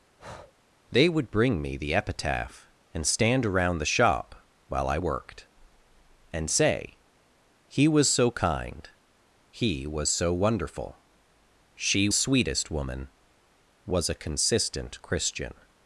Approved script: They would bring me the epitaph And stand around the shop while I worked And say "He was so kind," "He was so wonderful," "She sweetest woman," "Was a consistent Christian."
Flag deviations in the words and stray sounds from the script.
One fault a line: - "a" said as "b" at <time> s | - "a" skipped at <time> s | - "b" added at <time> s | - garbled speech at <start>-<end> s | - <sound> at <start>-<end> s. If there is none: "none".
- breath at 0.2-0.5 s